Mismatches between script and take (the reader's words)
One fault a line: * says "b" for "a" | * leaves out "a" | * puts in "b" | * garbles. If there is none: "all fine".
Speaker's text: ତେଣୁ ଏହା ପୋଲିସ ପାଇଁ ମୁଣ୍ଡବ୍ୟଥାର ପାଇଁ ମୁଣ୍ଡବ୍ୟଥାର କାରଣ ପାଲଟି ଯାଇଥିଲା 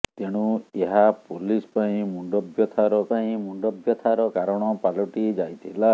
all fine